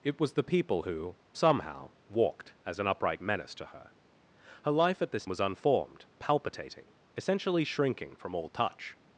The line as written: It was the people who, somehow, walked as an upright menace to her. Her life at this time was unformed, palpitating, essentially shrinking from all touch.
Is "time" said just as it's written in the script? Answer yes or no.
no